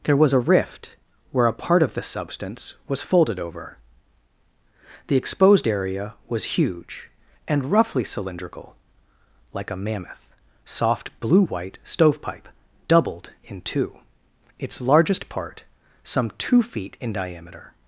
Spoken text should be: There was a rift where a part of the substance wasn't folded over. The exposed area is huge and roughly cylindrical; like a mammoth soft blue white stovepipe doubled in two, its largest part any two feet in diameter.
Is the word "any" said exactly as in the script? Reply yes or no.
no